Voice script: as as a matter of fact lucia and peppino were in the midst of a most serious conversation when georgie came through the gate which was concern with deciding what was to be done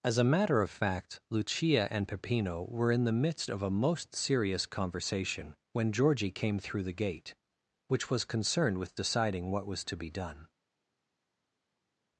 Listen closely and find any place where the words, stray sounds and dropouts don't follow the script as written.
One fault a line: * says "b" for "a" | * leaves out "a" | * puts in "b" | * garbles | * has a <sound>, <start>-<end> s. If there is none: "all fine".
* leaves out "as"
* says "concerned" for "concern"